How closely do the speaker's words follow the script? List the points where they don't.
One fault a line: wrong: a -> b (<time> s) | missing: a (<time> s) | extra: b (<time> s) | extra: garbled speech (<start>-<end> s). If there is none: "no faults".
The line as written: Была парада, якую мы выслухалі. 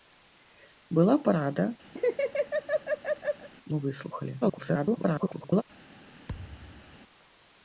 missing: якую (1.6 s)
extra: garbled speech (4.4-5.6 s)